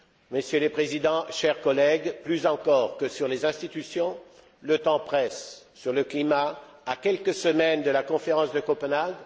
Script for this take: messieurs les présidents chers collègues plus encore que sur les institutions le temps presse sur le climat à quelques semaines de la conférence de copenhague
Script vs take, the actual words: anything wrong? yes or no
no